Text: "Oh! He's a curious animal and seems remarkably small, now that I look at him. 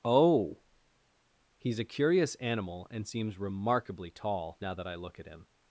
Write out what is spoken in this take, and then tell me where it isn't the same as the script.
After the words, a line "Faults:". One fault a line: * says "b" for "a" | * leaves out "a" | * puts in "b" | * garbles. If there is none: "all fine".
"Oh! He's a curious animal and seems remarkably tall, now that I look at him.
Faults:
* says "tall" for "small"